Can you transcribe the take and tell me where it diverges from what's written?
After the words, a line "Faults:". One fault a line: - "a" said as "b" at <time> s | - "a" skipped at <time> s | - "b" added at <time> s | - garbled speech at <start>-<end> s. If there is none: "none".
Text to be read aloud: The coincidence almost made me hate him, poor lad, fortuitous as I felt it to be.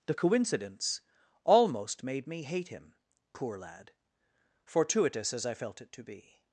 The coincidence almost made me hate him, poor lad, fortuitous as I felt it to be.
Faults:
none